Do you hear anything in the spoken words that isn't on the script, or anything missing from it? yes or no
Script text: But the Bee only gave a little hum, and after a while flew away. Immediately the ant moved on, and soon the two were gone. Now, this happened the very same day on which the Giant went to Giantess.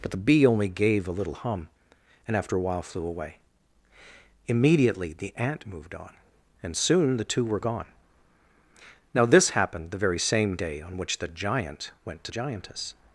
no